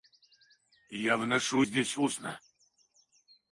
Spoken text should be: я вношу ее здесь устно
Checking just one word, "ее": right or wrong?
wrong